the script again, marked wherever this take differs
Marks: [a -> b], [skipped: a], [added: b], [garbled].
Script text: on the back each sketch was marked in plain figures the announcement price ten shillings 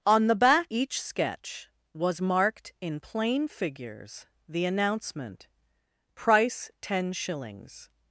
on the back each sketch was marked in plain figures the announcement price ten shillings